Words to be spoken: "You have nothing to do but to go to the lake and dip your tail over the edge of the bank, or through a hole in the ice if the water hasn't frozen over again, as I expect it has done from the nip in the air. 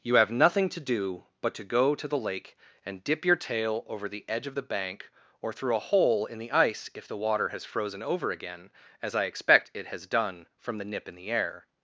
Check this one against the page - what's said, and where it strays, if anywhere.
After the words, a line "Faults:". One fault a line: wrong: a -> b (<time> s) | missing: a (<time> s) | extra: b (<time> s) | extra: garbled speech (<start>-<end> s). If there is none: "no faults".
"You have nothing to do but to go to the lake and dip your tail over the edge of the bank, or through a hole in the ice if the water has frozen over again, as I expect it has done from the nip in the air.
Faults:
wrong: hasn't -> has (7.5 s)